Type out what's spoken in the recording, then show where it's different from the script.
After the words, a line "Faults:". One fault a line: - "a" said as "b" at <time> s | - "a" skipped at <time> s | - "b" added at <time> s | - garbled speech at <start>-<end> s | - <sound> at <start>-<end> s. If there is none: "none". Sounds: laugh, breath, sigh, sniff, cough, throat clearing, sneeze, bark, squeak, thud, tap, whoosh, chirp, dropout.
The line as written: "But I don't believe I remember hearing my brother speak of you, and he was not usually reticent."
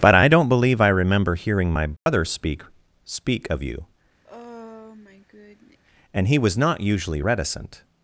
"But I don't believe I remember hearing my brother speak speak of you, and he was not usually reticent."
Faults:
- dropout at 2.0-2.1 s
- "speak" added at 3.0 s
- sigh at 4.2-5.8 s